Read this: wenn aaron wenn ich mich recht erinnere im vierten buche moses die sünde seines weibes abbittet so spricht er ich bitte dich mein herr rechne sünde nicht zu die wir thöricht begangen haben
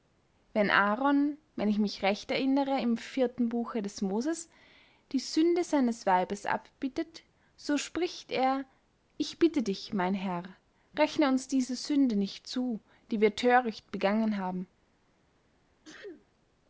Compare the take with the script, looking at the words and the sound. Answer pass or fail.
fail